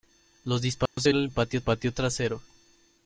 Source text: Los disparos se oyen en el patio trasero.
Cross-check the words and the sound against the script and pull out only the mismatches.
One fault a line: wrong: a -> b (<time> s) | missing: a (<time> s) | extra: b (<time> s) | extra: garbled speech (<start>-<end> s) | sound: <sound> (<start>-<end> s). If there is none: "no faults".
sound: dropout (0.9-1.0 s)
missing: oyen (1.1 s)
extra: patio (1.6 s)